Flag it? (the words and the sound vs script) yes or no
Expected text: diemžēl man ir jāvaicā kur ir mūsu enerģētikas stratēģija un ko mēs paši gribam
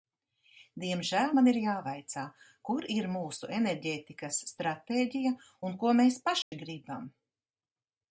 yes